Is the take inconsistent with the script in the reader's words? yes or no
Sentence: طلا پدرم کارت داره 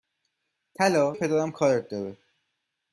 no